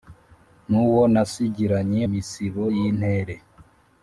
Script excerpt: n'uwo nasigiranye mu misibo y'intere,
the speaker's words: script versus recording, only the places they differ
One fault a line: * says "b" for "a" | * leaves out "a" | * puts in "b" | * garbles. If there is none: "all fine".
* leaves out "mu"